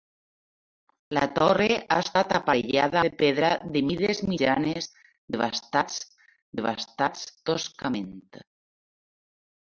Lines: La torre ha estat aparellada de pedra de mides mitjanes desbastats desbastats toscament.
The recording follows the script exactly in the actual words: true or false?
true